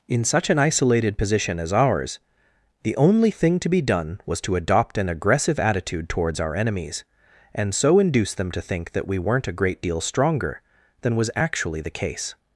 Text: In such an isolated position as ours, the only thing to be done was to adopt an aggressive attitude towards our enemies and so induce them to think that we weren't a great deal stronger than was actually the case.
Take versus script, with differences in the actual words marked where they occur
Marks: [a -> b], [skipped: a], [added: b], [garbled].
In such an isolated position as ours, the only thing to be done was to adopt an aggressive attitude towards our enemies and so induce them to think that we weren't a great deal stronger than was actually the case.